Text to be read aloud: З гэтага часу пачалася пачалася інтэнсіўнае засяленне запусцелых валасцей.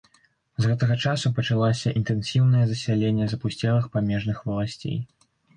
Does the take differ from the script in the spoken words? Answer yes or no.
yes